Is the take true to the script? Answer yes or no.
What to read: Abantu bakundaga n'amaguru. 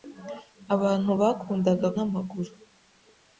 yes